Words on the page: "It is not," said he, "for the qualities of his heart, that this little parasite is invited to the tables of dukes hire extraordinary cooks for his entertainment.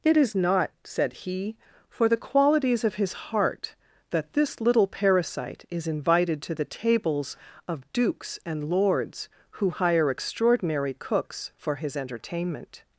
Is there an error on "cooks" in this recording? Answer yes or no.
no